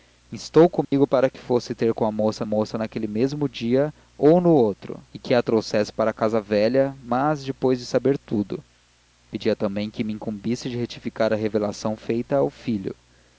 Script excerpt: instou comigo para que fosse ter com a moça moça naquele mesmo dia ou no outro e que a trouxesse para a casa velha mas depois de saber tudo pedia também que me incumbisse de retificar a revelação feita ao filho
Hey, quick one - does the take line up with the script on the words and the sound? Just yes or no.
no